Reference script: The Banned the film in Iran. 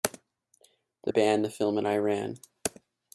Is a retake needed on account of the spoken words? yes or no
no